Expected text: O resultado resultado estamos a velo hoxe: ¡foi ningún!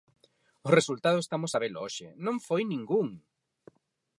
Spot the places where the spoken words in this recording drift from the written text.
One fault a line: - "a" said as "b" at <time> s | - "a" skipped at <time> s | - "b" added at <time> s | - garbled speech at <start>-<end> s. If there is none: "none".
- "resultado" skipped at 1.2 s
- "non" added at 2.3 s